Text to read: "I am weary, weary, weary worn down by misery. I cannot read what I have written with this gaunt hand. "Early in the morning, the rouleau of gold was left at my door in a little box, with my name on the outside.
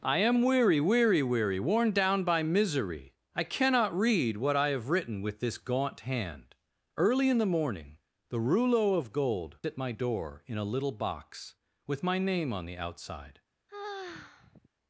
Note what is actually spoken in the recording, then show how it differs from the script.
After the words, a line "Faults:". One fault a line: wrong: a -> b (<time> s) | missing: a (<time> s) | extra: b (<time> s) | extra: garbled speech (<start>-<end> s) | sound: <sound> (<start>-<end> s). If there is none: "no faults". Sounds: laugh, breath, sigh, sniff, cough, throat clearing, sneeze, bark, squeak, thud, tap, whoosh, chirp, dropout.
"I am weary, weary, weary worn down by misery. I cannot read what I have written with this gaunt hand. "Early in the morning, the rouleau of gold at my door in a little box, with my name on the outside.
Faults:
missing: was left (9.6 s)
sound: sigh (13.7-14.7 s)